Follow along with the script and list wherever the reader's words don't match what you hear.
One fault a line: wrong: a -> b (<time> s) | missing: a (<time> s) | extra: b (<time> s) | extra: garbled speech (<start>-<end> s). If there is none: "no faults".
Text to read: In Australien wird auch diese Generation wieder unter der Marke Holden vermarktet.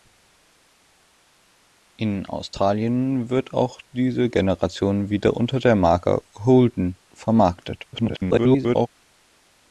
extra: garbled speech (7.9-8.9 s)